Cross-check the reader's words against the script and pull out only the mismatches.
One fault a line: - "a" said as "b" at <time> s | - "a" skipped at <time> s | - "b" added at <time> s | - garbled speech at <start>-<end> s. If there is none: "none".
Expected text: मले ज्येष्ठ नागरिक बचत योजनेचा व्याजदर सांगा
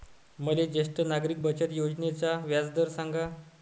none